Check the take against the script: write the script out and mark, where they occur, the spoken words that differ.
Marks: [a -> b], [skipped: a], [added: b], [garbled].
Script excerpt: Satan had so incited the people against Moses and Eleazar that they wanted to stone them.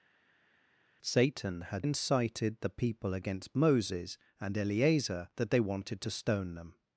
Satan had [skipped: so] incited the people against Moses and Eleazar that they wanted to stone them.